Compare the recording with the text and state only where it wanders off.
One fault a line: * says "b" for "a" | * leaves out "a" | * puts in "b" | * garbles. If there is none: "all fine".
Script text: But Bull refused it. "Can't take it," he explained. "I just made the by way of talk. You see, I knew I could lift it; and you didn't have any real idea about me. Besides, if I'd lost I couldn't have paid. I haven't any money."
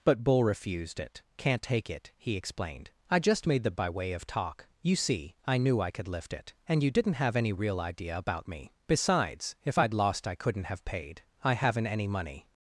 all fine